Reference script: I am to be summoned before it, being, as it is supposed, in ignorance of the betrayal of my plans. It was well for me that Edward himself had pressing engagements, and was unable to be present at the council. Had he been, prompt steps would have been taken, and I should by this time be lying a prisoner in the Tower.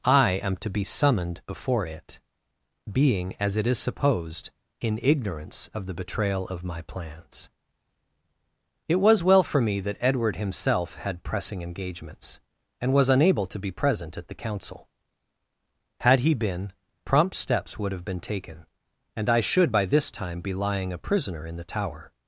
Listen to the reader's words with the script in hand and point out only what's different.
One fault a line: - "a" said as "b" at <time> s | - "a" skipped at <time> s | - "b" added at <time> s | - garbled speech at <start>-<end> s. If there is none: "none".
none